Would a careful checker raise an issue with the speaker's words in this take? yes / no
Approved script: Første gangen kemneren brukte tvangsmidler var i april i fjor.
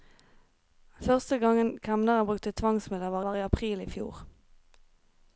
yes